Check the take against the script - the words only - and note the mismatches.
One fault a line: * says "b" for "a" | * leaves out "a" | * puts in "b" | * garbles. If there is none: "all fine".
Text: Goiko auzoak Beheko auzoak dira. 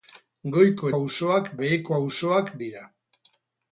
all fine